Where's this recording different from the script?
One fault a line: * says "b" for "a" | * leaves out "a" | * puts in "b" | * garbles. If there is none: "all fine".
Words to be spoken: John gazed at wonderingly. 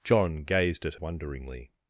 all fine